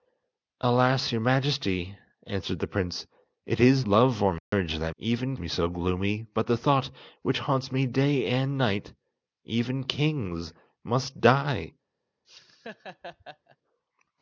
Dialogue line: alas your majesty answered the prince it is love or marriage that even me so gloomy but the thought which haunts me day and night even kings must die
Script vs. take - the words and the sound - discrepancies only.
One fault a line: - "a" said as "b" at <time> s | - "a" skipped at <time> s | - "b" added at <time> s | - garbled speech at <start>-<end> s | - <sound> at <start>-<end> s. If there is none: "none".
- dropout at 4.4-4.5 s
- laugh at 12.2-13.6 s